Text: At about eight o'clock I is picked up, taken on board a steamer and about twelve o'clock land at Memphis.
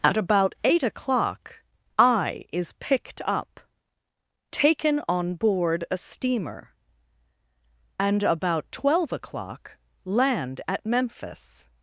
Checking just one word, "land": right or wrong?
right